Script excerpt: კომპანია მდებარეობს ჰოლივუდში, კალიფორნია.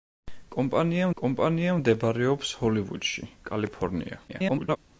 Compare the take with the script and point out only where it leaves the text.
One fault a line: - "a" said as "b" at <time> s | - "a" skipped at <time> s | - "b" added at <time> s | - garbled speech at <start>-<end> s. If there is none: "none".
- "კომპანია" added at 1.2 s
- garbled speech at 4.3-4.8 s